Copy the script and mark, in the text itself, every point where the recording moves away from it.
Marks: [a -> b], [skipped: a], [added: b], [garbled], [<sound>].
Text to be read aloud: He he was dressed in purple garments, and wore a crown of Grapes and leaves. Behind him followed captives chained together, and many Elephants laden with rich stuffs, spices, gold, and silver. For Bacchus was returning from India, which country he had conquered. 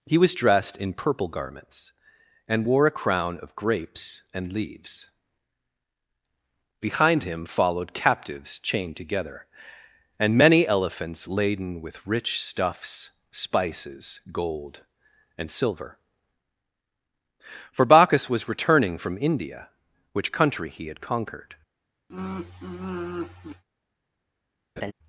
He [skipped: he] was dressed in purple garments, and wore a crown of Grapes and leaves. Behind him followed captives chained together, and many Elephants laden with rich stuffs, spices, gold, and silver. For Bacchus was returning from India, which country he had conquered. [sigh] [laugh]